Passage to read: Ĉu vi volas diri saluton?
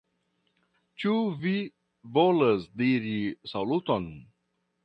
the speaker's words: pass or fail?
pass